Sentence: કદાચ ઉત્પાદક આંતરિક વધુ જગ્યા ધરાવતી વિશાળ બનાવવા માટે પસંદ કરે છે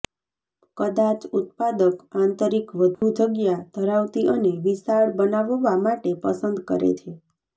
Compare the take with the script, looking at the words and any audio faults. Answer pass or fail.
fail